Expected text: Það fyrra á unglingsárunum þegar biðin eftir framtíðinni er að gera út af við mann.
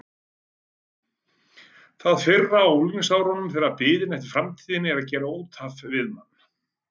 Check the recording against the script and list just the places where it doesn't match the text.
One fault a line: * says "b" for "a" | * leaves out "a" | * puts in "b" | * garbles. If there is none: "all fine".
all fine